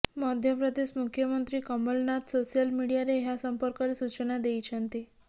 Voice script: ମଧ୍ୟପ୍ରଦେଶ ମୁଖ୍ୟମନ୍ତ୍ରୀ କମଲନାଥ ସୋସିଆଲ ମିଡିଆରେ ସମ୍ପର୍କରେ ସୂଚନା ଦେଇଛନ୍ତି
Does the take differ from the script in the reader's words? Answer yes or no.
yes